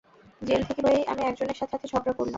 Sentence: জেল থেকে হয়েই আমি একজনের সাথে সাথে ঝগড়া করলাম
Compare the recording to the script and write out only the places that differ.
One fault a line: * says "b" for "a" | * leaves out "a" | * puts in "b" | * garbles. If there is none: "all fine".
all fine